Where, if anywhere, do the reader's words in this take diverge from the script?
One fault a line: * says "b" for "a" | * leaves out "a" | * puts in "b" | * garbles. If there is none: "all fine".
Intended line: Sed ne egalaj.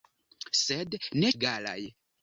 all fine